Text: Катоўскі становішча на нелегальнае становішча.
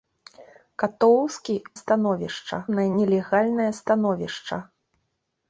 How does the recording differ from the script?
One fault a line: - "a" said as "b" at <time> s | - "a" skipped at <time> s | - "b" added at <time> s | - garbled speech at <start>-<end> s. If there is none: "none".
none